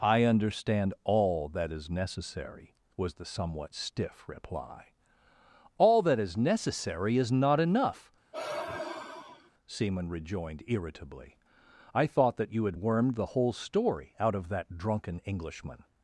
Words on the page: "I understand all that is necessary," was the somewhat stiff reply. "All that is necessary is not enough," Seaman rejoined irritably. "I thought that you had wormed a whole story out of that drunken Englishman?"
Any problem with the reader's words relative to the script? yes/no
yes